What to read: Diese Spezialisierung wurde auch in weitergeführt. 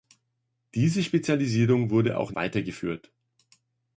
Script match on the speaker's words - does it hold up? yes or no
yes